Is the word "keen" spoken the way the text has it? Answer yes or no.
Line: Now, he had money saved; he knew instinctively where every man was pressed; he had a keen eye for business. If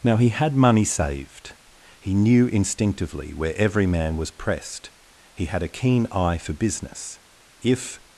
yes